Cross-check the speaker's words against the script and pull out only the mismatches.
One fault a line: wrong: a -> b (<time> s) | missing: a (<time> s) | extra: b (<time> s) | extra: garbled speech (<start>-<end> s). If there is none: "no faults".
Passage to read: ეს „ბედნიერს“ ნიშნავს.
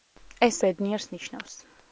no faults